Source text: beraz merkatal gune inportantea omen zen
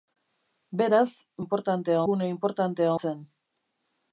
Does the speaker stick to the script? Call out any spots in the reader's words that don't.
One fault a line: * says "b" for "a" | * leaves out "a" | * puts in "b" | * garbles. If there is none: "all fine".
* says "inportantea" for "merkatal"
* leaves out "omen"